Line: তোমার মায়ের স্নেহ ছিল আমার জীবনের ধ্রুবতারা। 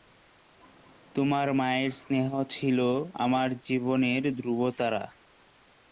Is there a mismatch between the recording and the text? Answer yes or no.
no